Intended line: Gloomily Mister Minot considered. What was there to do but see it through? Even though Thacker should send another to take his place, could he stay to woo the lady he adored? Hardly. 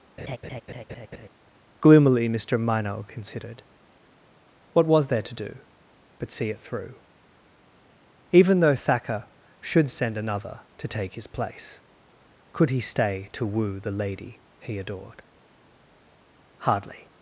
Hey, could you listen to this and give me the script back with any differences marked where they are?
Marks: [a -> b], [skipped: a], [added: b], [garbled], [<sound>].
[laugh] Gloomily Mister Minot considered. What was there to do but see it through? Even though Thacker should send another to take his place, could he stay to woo the lady he adored? Hardly.